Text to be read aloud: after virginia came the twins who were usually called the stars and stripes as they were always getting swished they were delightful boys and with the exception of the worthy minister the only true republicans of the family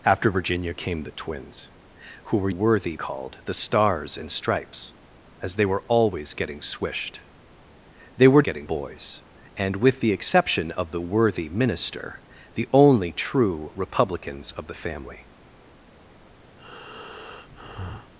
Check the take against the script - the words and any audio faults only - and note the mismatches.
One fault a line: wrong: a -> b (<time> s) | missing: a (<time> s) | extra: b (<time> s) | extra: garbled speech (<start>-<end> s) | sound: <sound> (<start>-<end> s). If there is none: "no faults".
wrong: usually -> worthy (2.5 s)
wrong: delightful -> getting (8.4 s)
sound: breath (16.6-18.1 s)